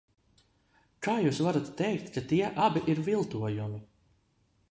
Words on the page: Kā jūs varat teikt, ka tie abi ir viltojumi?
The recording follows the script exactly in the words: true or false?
true